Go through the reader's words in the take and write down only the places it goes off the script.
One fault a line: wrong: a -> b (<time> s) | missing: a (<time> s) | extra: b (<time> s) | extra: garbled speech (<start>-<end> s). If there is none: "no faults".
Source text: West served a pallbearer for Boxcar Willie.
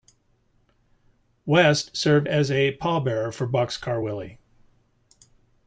extra: as (2.2 s)